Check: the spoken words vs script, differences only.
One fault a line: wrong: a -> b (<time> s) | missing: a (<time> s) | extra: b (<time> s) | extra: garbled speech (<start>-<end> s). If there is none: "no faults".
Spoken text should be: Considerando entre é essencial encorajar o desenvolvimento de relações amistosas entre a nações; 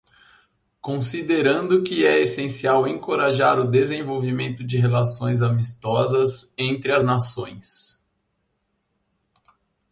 wrong: entre -> que (1.8 s)
wrong: a -> as (6.9 s)